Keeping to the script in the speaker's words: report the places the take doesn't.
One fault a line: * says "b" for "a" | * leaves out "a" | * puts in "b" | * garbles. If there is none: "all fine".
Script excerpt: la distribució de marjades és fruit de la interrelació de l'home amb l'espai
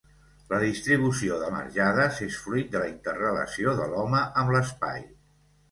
all fine